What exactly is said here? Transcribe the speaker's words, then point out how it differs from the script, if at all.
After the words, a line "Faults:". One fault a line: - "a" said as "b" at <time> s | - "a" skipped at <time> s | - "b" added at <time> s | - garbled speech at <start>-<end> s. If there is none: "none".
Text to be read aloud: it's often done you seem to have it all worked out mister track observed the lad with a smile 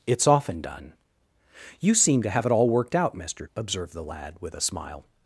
it's often done you seem to have it all worked out mister observed the lad with a smile
Faults:
- "track" skipped at 3.5 s